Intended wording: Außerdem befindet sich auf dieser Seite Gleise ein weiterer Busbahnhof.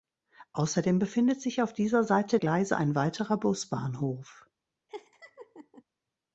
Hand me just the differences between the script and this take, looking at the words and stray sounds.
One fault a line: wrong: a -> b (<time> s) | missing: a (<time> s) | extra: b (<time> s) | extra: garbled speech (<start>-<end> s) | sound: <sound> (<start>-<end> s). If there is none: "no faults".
sound: laugh (4.9-5.8 s)